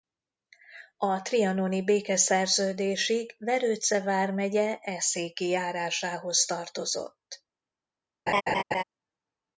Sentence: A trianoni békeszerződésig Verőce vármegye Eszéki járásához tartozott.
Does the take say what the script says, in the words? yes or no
yes